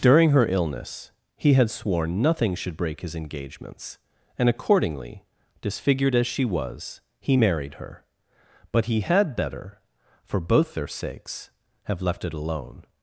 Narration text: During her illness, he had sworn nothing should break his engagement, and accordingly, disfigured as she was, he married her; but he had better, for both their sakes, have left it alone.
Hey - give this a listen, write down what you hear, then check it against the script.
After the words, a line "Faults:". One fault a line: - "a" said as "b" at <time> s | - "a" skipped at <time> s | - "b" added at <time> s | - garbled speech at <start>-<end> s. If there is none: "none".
During her illness, he had sworn nothing should break his engagements, and accordingly, disfigured as she was, he married her; but he had better, for both their sakes, have left it alone.
Faults:
- "engagement" said as "engagements" at 3.1 s